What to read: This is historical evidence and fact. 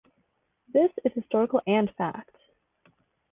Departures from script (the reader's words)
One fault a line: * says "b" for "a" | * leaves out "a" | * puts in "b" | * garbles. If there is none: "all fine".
* leaves out "evidence"